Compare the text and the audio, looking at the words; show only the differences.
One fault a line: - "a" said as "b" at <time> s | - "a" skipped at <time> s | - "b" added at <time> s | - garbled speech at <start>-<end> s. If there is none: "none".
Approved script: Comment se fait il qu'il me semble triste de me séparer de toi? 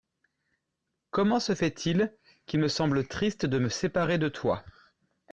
none